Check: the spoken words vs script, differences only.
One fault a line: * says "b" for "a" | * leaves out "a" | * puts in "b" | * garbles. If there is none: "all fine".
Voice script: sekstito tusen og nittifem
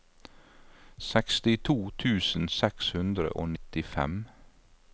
* puts in "seks hundre"